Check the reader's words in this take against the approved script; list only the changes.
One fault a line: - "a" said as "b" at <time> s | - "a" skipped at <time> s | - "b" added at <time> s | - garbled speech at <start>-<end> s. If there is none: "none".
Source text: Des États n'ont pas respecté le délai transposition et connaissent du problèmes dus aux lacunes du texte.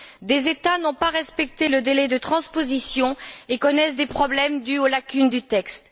- "de" added at 2.1 s
- "du" said as "des" at 4.0 s